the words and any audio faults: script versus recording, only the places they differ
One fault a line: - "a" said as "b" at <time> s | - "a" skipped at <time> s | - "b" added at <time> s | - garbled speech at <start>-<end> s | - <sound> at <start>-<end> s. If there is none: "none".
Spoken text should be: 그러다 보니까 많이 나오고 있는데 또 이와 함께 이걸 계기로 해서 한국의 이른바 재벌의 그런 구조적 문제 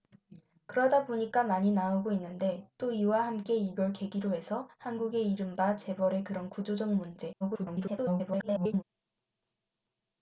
- garbled speech at 7.4-8.8 s